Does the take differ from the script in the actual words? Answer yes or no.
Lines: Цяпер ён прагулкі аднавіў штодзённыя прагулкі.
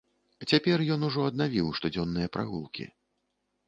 yes